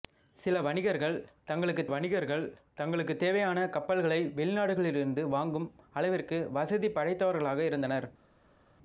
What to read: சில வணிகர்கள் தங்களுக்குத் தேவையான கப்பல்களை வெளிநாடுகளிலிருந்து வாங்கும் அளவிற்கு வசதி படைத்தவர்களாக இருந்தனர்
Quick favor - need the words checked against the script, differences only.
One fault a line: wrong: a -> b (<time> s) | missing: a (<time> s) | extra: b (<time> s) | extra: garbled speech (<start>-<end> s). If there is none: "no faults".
extra: வணிகர்கள் தங்களுக்குத் (1.9 s)